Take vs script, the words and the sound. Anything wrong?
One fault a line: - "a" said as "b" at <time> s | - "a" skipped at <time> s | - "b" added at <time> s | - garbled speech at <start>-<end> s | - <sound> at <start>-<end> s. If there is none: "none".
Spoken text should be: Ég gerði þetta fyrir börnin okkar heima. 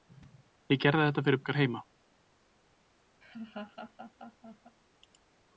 - "börnin" skipped at 1.4 s
- laugh at 3.2-4.8 s